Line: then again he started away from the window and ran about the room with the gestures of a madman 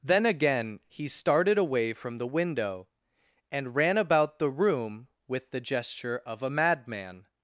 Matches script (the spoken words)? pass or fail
fail